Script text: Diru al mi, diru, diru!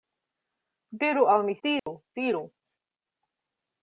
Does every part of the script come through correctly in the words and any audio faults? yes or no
no